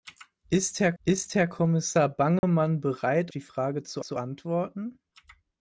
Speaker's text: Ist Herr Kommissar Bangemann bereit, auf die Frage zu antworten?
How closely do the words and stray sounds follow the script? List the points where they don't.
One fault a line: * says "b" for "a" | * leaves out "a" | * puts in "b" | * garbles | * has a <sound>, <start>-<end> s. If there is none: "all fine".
* puts in "ist Herr"
* has a dropout, 2.4-2.4 s
* leaves out "auf"
* puts in "zu"